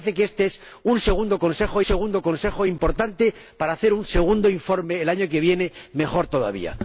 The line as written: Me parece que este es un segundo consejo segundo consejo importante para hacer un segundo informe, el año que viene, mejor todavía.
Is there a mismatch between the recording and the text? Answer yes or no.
no